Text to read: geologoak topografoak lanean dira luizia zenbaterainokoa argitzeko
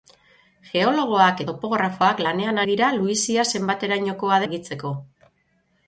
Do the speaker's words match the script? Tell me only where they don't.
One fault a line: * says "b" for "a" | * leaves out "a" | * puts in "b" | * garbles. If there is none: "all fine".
all fine